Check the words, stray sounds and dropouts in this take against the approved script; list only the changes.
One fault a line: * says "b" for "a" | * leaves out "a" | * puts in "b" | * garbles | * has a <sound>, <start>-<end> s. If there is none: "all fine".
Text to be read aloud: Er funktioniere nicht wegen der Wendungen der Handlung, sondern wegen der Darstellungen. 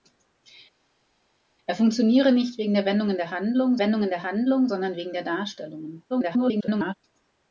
* puts in "Wendungen der Handlung"
* garbles